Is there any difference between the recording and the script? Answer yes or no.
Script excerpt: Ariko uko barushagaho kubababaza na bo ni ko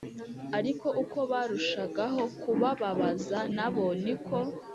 no